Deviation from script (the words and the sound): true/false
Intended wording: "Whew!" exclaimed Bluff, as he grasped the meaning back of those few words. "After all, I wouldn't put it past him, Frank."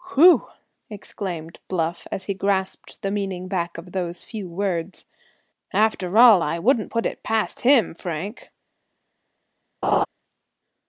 true